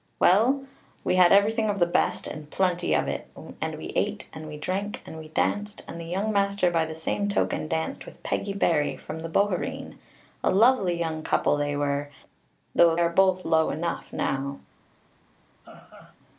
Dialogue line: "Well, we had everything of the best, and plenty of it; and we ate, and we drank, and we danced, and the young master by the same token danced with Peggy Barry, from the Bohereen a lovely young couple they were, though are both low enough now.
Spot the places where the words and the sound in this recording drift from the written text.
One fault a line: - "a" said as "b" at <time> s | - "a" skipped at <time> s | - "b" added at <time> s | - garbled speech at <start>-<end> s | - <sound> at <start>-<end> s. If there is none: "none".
- laugh at 15.6-16.2 s